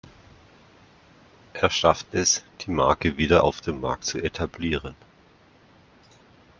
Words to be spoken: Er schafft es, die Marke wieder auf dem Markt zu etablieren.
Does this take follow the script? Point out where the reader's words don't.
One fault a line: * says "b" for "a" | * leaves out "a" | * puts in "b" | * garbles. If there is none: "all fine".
all fine